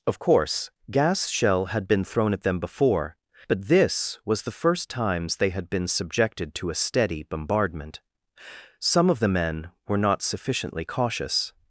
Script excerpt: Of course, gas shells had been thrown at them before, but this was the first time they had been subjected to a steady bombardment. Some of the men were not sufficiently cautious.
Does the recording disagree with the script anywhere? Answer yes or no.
yes